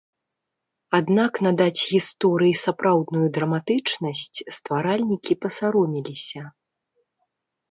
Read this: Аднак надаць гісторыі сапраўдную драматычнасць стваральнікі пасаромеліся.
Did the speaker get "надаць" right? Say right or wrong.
right